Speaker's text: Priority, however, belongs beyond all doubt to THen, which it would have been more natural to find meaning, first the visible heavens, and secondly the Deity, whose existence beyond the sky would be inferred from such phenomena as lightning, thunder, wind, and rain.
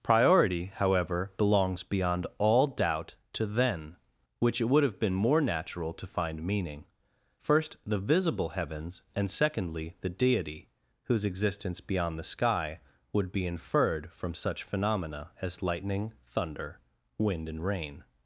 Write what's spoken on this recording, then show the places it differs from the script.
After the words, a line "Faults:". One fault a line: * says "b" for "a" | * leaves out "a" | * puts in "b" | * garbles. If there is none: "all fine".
Priority, however, belongs beyond all doubt to THen, which it would have been more natural to find meaning, first the visible heavens, and secondly the Deity, whose existence beyond the sky would be inferred from such phenomena as lightning, thunder, wind, and rain.
Faults:
all fine